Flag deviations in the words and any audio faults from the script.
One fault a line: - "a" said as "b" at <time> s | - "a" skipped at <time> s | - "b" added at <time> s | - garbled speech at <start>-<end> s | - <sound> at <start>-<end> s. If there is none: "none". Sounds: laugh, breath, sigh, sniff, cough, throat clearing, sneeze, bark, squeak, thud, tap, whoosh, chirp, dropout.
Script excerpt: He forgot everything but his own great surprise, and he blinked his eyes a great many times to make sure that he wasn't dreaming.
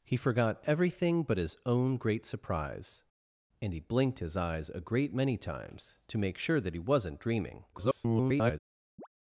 - garbled speech at 7.7-8.6 s
- chirp at 9.0-9.1 s